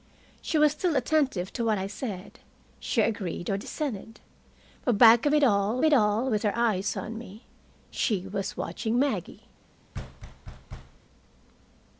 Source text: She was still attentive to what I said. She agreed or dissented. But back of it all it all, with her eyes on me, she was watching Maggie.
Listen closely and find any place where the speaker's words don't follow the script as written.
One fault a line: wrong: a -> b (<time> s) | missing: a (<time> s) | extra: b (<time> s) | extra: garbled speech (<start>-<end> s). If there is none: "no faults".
no faults